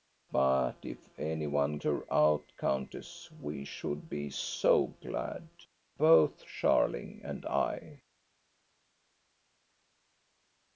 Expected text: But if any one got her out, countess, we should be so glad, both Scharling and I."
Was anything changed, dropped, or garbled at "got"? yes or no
yes